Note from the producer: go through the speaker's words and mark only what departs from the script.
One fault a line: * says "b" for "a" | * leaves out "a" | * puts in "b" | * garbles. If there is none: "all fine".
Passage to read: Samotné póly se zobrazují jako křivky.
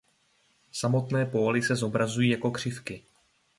all fine